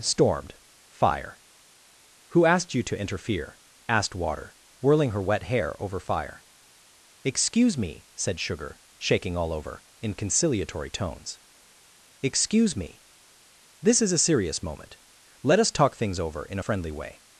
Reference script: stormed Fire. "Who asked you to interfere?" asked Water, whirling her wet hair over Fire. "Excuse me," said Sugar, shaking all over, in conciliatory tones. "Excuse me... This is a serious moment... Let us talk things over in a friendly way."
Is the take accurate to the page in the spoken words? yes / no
no